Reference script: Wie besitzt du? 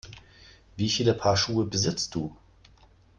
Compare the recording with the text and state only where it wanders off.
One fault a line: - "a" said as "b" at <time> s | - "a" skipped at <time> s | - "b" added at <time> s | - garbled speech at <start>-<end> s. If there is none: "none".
- "viele Paar Schuhe" added at 0.9 s